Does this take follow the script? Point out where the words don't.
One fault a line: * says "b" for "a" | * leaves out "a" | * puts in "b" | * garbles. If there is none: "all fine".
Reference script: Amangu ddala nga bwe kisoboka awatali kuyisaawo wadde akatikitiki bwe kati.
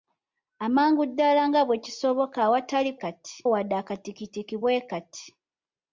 * says "kati" for "kuyisaawo"